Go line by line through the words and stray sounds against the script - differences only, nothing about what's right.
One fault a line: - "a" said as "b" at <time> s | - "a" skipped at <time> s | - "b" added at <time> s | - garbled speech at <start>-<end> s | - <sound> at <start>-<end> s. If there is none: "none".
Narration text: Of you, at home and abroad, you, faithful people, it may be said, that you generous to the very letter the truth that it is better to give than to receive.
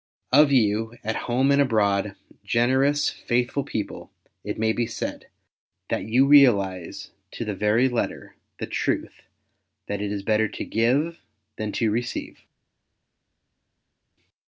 - "you" said as "generous" at 2.4 s
- "generous" said as "realize" at 6.2 s